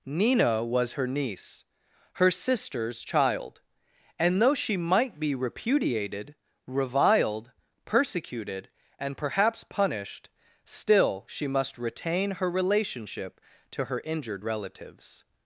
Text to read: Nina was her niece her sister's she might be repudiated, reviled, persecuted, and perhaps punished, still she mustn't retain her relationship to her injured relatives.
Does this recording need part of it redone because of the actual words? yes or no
yes